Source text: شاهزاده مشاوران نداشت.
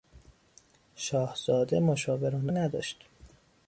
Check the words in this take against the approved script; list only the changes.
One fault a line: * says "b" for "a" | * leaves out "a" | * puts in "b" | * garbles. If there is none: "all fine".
all fine